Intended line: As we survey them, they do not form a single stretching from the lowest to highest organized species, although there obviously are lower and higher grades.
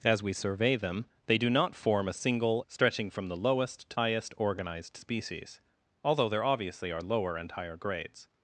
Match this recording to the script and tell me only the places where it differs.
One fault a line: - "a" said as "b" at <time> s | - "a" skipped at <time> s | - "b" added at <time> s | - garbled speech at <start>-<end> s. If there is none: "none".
none